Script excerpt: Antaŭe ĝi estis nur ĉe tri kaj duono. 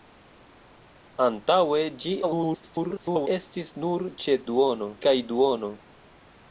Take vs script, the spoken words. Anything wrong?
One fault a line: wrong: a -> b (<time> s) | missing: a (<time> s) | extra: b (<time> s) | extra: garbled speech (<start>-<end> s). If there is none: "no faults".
extra: garbled speech (2.2-3.3 s)
wrong: tri -> duono (4.5 s)